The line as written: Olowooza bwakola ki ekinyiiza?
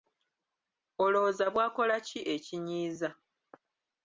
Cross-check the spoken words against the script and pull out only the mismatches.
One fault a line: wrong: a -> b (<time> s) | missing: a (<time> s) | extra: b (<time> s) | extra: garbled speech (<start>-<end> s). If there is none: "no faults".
no faults